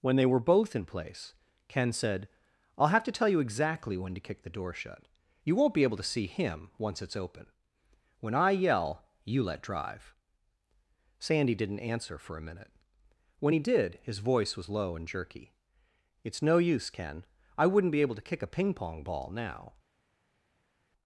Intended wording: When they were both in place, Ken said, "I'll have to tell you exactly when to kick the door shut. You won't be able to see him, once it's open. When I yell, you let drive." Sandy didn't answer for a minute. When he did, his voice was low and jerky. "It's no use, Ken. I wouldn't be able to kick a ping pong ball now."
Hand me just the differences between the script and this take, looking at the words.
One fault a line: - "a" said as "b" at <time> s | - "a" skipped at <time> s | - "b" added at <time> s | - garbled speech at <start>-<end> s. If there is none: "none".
none